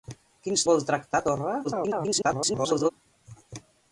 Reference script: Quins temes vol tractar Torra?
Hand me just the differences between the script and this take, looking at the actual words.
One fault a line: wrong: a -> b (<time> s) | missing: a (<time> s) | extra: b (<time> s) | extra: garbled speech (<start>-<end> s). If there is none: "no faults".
missing: temes (0.6 s)
extra: garbled speech (1.6-2.9 s)